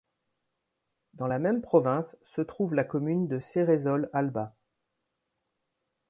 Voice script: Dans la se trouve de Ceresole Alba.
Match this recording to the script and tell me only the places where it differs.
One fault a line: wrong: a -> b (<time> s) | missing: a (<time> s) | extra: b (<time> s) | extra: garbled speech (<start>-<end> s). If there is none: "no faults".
extra: même province (1.4 s)
extra: la commune (2.7 s)